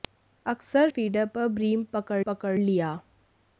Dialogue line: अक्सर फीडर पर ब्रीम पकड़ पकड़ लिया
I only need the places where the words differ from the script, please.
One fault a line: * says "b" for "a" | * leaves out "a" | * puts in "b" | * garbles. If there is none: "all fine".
all fine